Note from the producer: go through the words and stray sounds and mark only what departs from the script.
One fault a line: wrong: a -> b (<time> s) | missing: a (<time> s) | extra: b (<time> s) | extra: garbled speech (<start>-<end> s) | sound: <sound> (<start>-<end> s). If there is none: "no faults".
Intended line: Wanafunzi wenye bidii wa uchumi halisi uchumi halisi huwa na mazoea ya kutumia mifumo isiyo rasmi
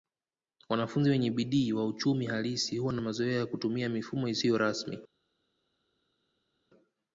missing: uchumi halisi (2.8 s)